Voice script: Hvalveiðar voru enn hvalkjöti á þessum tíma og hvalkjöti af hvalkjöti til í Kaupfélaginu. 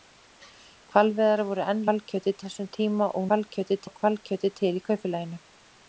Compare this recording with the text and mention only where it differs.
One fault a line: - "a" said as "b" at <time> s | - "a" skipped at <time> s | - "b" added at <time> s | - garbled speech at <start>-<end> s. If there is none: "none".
none